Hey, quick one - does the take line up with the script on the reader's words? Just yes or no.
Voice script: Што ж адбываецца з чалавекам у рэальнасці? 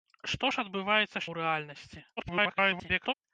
no